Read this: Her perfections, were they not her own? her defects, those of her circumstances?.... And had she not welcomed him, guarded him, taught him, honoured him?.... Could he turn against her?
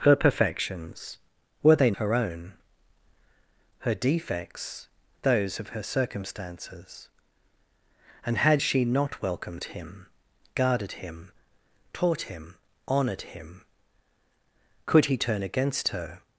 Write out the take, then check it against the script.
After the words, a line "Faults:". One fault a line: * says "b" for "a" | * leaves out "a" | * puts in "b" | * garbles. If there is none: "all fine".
Her perfections, were they her own? her defects, those of her circumstances?.... And had she not welcomed him, guarded him, taught him, honoured him?.... Could he turn against her?
Faults:
* leaves out "not"